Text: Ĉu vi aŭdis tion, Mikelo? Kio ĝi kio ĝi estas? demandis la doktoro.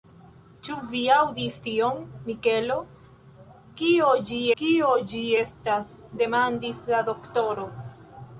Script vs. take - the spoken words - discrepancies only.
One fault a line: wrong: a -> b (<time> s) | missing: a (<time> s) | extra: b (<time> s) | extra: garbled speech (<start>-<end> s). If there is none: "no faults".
no faults